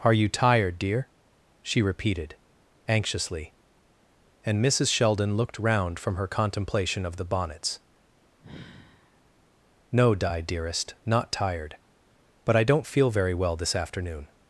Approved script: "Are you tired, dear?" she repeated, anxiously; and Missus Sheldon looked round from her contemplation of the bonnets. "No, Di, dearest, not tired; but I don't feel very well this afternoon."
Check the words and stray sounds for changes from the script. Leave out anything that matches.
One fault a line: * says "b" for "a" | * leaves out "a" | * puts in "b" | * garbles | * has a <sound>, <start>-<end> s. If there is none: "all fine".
* has a sigh, 8.4-9.2 s